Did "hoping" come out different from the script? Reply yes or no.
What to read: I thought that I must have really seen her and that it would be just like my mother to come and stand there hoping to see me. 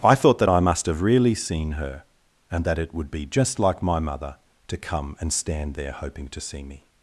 no